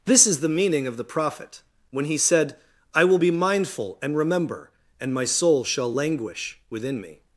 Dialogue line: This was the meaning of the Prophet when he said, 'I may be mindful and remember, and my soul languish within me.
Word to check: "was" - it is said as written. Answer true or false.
false